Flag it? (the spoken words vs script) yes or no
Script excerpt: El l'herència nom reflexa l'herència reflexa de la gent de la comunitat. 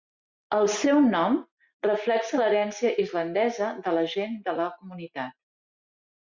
yes